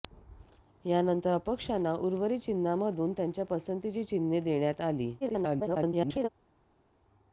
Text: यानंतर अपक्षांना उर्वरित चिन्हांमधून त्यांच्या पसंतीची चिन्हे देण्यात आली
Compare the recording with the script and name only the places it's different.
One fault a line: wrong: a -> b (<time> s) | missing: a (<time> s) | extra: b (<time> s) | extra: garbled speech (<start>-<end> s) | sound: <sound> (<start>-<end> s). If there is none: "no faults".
extra: garbled speech (5.2-6.3 s)